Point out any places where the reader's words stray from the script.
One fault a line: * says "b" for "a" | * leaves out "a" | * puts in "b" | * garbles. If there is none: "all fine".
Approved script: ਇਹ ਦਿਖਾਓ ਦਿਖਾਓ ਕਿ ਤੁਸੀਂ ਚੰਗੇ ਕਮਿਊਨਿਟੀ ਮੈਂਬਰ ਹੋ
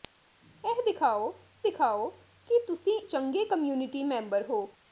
all fine